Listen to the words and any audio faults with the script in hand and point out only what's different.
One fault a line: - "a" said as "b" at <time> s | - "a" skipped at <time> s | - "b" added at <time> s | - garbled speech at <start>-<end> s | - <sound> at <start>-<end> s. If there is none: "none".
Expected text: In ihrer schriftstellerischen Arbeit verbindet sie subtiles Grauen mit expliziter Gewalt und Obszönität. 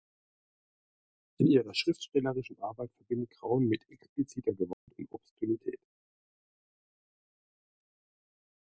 - "sie subtiles" skipped at 3.3 s
- dropout at 4.7-4.9 s